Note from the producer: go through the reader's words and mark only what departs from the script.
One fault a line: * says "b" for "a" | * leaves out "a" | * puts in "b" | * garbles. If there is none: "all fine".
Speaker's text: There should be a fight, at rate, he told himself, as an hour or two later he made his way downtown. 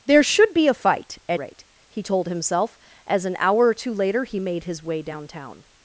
all fine